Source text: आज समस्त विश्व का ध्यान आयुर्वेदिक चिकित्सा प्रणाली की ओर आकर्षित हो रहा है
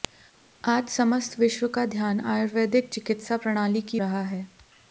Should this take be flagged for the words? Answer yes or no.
yes